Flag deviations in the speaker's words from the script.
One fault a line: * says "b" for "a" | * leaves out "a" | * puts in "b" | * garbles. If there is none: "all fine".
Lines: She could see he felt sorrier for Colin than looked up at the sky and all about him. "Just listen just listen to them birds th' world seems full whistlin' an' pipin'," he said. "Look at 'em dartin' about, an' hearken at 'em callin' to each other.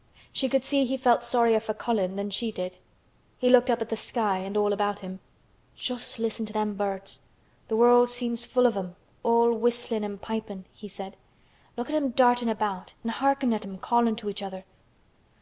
* puts in "she did He"
* leaves out "just listen"
* puts in "of em all"